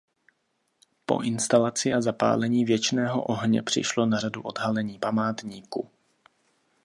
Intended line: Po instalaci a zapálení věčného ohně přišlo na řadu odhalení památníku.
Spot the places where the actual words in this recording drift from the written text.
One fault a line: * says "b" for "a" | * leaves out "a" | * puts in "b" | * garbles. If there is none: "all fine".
all fine